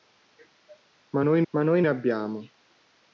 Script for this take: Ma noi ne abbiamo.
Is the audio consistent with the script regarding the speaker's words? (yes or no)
no